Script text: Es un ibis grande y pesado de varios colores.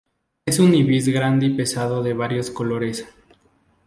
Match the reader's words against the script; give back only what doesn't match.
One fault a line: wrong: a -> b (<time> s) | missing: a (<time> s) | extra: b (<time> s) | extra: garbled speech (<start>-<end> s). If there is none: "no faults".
no faults